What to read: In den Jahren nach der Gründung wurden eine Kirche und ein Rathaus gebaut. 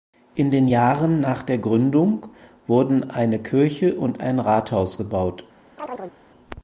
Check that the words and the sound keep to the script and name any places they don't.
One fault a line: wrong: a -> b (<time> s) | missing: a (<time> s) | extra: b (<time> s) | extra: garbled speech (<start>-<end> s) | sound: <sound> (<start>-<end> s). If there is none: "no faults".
sound: chirp (5.8-6.2 s)